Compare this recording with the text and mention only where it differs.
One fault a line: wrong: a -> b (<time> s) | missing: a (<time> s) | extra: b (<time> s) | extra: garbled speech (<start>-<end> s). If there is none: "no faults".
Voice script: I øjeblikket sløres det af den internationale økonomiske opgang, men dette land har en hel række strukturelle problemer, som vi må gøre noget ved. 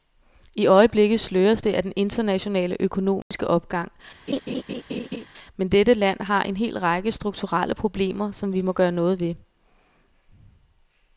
no faults